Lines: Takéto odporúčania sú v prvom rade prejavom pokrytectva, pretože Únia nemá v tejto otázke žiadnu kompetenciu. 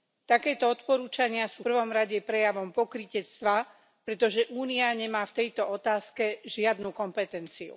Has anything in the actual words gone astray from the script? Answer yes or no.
yes